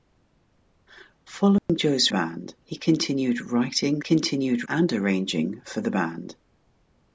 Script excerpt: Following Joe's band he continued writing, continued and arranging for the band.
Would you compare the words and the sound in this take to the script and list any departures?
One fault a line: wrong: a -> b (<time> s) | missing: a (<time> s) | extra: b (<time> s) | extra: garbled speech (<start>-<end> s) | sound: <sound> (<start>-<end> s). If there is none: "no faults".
sound: dropout (1.6-1.7 s)